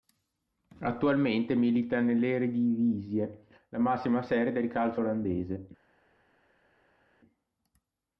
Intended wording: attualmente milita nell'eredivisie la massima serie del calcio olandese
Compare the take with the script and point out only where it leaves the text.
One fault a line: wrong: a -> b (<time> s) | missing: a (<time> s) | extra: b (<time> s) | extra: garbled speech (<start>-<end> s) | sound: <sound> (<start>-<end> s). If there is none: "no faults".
no faults